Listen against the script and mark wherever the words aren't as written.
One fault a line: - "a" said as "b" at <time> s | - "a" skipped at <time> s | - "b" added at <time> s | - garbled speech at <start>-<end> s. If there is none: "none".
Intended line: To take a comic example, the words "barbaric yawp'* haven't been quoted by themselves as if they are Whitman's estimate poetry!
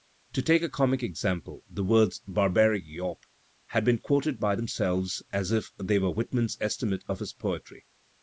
- "haven't" said as "have" at 3.7 s
- "are" said as "were" at 6.0 s
- "of his" added at 7.1 s